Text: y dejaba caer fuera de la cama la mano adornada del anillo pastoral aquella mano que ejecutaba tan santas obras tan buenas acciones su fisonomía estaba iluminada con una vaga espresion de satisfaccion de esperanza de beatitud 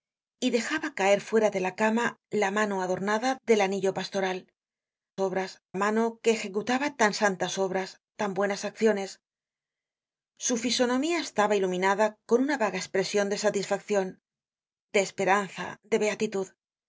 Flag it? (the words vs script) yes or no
yes